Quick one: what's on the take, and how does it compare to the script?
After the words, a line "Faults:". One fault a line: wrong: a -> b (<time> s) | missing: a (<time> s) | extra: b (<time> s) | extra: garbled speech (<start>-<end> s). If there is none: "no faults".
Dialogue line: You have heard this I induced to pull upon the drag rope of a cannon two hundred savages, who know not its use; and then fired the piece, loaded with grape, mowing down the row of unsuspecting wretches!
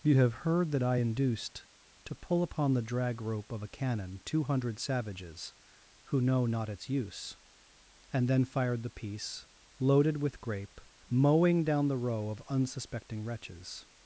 You have heard that I induced to pull upon the drag rope of a cannon two hundred savages, who know not its use; and then fired the piece, loaded with grape, mowing down the row of unsuspecting wretches!
Faults:
wrong: this -> that (0.7 s)